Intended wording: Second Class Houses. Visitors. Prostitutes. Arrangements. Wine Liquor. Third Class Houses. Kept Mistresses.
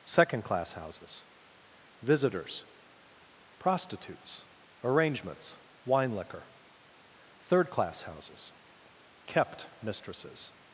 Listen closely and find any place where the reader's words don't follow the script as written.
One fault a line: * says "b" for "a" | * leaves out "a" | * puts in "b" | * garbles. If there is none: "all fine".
all fine